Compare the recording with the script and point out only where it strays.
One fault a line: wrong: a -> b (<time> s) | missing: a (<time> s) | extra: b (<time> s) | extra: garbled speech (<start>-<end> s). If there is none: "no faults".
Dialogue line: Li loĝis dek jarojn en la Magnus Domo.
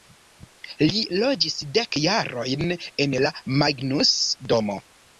no faults